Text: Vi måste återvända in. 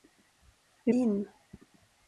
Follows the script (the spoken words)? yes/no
no